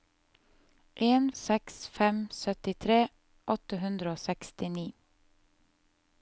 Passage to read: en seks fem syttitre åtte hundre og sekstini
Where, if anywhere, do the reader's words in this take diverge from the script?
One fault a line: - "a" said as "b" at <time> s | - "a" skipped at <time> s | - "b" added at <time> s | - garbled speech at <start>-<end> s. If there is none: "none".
none